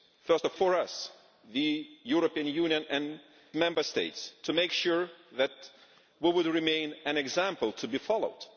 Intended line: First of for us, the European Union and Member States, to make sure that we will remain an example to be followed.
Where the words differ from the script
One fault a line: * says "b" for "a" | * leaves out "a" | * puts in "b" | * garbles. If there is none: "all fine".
all fine